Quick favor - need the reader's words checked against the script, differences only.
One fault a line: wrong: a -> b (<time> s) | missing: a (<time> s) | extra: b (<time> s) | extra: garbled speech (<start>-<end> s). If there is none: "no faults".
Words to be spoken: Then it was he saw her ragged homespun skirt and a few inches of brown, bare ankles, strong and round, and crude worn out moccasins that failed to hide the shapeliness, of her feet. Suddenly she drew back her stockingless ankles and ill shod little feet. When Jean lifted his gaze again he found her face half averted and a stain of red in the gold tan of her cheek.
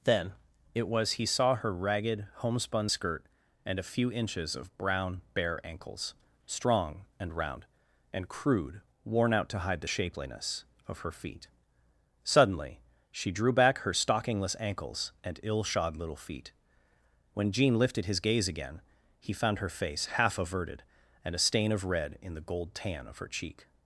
missing: moccasins that failed (9.5 s)